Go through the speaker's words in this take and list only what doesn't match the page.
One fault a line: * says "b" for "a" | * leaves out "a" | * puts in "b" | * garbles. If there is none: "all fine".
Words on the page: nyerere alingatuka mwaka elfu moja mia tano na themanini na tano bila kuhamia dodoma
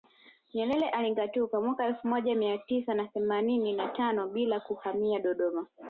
* says "tisa" for "tano"